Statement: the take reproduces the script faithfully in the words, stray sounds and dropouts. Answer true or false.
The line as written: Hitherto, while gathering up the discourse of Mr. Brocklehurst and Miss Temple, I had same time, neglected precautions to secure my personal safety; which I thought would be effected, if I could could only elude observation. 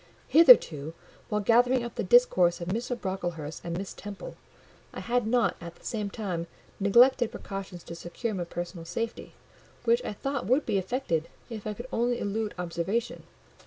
false